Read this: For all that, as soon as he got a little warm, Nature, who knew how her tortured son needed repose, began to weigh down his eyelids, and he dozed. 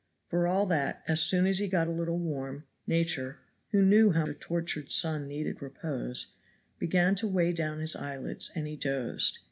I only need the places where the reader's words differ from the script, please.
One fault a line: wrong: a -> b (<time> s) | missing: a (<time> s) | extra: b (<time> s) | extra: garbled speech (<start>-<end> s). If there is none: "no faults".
no faults